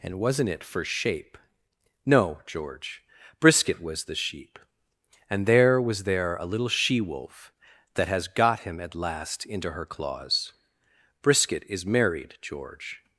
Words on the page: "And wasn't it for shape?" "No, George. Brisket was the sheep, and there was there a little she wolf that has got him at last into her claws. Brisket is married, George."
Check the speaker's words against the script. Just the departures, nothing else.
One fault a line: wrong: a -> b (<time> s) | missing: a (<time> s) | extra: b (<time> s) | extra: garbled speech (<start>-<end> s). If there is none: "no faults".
no faults